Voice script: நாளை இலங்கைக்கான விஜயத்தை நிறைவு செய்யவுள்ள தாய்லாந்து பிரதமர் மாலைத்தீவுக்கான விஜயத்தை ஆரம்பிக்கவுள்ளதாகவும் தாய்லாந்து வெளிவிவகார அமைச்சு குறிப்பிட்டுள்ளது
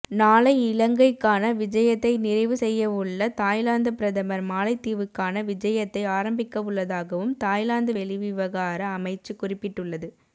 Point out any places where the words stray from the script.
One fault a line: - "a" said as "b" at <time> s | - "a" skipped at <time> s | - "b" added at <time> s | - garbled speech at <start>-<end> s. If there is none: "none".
none